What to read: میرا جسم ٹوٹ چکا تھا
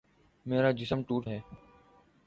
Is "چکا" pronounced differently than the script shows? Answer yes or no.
yes